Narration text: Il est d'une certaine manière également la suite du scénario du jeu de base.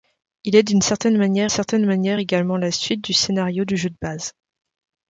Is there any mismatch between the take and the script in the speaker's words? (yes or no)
yes